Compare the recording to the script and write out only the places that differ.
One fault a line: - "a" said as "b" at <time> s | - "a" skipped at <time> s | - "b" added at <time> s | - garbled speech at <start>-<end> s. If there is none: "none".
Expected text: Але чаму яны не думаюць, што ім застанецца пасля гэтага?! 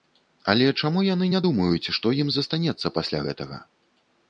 none